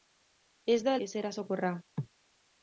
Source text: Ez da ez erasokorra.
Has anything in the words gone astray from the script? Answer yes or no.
no